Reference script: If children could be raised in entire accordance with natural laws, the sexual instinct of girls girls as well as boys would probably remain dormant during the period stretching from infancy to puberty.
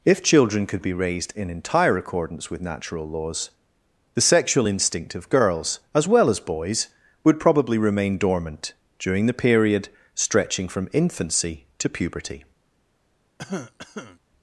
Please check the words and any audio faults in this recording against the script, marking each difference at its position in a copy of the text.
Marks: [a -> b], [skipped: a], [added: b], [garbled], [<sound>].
If children could be raised in entire accordance with natural laws, the sexual instinct of girls [skipped: girls] as well as boys would probably remain dormant during the period stretching from infancy to puberty. [cough]